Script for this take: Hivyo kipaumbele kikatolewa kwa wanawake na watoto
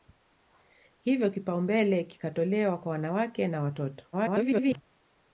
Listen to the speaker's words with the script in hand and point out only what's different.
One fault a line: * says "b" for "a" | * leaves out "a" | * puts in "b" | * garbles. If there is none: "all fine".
* garbles